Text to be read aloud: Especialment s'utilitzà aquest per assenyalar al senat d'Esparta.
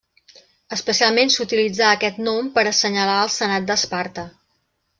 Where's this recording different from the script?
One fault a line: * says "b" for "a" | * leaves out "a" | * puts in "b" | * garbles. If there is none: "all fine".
* puts in "nom"